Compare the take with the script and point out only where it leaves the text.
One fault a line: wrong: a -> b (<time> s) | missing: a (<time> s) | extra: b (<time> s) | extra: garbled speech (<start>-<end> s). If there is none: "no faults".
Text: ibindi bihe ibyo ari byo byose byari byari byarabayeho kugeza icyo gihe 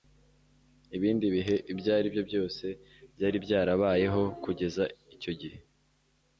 missing: byari (3.4 s)